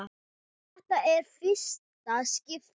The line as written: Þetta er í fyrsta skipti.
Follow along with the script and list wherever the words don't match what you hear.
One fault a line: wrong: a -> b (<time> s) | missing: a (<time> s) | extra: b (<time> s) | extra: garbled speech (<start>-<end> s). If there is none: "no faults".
no faults